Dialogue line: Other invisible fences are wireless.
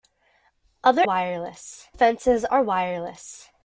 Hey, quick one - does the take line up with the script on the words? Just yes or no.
no